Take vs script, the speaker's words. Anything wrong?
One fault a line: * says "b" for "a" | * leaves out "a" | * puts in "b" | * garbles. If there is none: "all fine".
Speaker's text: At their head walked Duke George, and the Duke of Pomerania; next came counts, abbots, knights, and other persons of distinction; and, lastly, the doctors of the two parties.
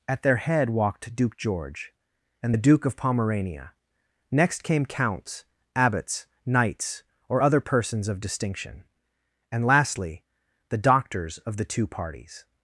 * says "or" for "and"